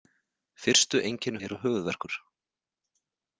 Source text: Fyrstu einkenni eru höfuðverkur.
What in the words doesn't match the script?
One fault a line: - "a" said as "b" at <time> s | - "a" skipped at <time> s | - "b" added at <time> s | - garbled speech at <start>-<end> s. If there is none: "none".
none